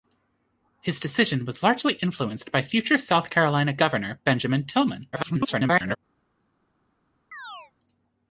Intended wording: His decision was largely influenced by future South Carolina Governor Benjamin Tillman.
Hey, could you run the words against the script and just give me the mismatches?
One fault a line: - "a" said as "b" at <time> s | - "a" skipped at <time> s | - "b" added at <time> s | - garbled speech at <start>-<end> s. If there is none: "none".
- garbled speech at 5.1-6.0 s